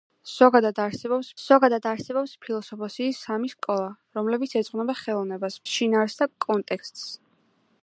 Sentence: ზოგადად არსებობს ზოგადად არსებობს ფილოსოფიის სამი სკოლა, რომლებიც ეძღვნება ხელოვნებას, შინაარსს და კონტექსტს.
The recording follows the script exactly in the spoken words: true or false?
true